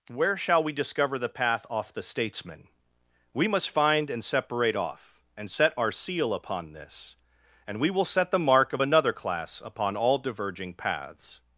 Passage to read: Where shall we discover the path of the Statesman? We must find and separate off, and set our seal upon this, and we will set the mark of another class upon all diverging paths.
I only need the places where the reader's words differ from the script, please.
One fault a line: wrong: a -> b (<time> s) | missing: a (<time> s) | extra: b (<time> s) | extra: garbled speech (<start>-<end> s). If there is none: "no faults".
wrong: of -> off (1.7 s)